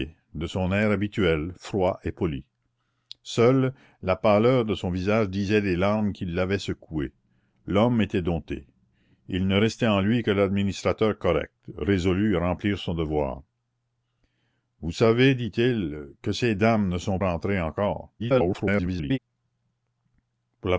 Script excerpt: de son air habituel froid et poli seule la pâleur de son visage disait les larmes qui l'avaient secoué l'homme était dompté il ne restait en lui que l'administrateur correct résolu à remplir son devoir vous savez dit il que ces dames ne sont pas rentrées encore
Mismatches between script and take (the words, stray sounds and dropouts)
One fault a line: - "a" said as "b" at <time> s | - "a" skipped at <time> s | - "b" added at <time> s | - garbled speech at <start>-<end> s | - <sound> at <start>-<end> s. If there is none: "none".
- "pas" skipped at 17.2 s
- garbled speech at 18.2-19.2 s